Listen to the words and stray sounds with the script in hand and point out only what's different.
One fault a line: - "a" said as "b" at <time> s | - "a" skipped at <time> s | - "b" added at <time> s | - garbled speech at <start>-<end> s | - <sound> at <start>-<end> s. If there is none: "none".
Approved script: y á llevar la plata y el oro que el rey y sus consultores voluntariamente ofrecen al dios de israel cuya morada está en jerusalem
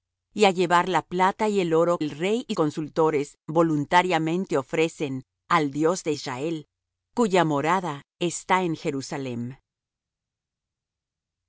- "que" skipped at 2.0 s
- "sus" skipped at 2.6 s